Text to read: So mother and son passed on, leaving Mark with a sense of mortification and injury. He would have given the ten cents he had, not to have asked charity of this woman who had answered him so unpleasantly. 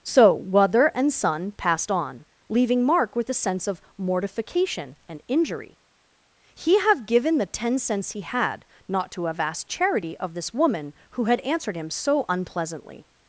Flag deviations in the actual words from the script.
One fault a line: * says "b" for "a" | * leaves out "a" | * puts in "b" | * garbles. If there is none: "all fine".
* leaves out "would"